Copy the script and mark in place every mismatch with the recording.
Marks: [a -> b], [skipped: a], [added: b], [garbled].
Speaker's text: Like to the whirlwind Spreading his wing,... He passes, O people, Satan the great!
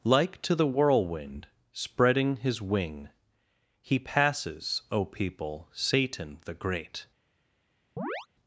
Like to the whirlwind Spreading his wing,... He passes, O people, Satan the great!